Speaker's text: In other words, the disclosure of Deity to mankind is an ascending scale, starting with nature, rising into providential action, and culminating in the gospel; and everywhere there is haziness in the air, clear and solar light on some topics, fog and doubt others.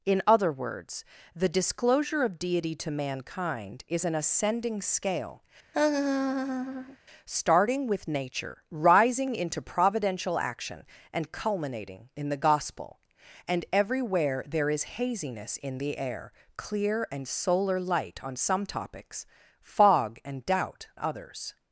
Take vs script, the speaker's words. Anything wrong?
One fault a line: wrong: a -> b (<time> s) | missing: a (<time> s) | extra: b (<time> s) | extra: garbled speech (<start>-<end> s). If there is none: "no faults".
no faults